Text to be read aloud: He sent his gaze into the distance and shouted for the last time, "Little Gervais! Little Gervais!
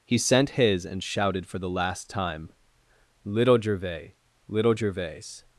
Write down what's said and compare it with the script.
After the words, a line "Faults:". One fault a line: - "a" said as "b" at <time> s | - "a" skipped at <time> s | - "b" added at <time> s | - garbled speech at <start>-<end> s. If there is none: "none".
He sent his and shouted for the last time, "Little Gervais! Little Gervais!
Faults:
- "gaze into the distance" skipped at 0.9 s